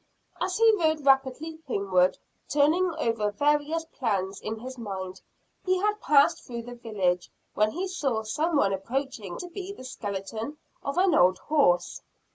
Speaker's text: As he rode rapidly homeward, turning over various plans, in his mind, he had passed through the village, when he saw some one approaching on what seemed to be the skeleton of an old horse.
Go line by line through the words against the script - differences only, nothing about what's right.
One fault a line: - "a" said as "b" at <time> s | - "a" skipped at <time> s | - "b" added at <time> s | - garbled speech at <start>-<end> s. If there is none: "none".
- "on what seemed" skipped at 9.4 s